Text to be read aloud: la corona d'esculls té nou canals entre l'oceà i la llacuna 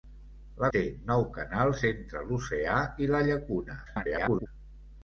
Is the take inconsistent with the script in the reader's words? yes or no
yes